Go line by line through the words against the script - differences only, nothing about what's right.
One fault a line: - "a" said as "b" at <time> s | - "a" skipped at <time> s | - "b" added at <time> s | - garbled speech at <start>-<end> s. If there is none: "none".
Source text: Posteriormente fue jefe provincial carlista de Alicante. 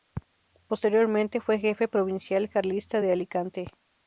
none